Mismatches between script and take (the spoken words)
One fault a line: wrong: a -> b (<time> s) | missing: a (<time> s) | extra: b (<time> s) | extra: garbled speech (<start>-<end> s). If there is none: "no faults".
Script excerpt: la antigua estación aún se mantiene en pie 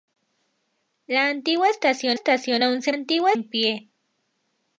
extra: estación (2.1 s)
wrong: mantiene -> antigua (2.9 s)